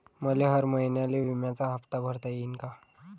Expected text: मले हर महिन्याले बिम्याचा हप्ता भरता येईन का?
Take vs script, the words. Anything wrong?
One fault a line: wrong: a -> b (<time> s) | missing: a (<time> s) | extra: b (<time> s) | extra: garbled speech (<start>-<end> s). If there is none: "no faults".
no faults